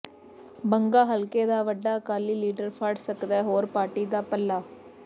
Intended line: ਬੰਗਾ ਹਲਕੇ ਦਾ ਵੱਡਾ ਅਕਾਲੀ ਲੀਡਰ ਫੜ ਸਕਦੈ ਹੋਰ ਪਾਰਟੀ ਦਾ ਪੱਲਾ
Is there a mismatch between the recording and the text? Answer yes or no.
no